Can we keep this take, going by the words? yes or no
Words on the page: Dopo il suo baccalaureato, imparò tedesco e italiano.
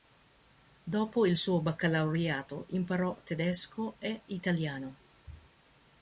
yes